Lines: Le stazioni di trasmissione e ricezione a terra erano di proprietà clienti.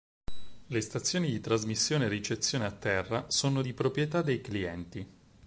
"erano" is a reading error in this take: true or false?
true